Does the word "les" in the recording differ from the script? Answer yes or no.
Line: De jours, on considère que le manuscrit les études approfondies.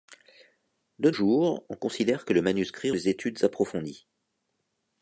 no